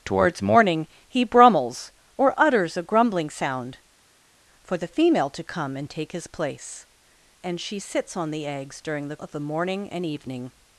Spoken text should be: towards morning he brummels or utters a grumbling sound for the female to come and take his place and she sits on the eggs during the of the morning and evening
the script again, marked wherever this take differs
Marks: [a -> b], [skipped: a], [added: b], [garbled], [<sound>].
towards morning he brummels or utters a grumbling sound for the female to come and take his place and she sits on the eggs during the of the morning and evening